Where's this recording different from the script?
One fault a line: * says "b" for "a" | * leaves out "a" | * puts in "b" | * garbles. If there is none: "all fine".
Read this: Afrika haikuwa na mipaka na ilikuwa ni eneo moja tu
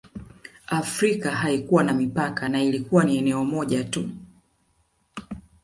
all fine